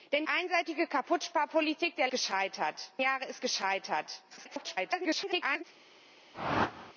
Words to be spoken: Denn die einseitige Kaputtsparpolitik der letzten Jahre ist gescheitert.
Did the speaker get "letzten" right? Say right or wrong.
wrong